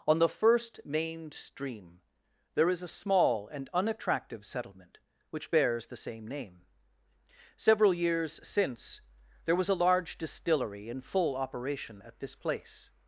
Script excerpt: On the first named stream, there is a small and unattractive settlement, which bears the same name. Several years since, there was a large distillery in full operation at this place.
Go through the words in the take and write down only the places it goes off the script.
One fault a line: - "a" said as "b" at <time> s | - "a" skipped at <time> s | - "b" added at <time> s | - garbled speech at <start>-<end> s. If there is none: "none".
none